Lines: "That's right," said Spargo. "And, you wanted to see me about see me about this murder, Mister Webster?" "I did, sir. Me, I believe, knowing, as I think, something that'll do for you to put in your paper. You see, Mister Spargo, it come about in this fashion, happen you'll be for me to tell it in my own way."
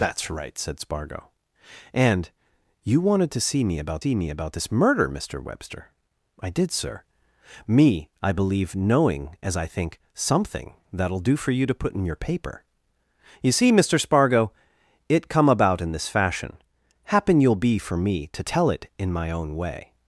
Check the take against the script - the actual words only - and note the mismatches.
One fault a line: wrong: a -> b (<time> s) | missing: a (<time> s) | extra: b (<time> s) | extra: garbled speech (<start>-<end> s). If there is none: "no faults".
no faults